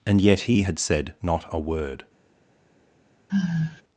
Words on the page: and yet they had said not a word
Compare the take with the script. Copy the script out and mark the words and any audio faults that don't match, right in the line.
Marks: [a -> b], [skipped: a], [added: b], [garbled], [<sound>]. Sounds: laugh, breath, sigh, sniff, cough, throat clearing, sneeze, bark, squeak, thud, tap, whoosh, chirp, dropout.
and yet [they -> he] had said not a word [sigh]